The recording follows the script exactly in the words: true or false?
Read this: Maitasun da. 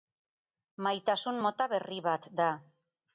false